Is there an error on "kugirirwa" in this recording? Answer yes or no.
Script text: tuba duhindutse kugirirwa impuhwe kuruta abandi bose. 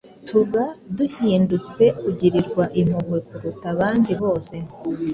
no